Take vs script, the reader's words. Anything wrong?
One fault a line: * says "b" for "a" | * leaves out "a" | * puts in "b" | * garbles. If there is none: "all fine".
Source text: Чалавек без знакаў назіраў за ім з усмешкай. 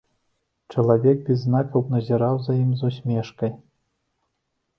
all fine